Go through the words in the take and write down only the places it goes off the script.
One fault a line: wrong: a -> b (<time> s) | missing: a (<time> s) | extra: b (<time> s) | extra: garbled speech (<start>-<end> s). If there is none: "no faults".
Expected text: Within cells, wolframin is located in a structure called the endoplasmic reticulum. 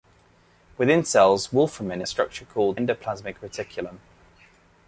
missing: is located in (2.0 s)
missing: the (2.8 s)